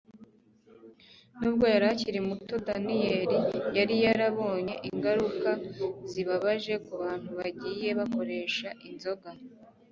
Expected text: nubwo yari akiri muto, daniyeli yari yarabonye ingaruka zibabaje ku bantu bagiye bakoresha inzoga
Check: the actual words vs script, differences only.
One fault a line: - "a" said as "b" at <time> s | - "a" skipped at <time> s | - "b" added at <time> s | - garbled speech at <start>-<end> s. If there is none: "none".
none